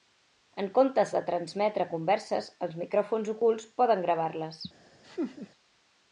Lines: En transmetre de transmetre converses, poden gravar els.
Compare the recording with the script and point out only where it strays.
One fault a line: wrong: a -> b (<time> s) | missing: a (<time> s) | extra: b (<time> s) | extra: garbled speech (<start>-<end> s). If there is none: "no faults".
wrong: transmetre -> comptes (0.8 s)
extra: els micròfons ocults (2.7 s)
wrong: els -> les (4.5 s)